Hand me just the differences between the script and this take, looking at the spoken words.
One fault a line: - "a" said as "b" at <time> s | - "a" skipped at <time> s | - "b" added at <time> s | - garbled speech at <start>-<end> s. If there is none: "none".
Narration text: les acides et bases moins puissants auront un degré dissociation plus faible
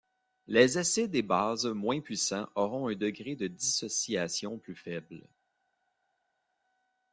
- "de" added at 3.4 s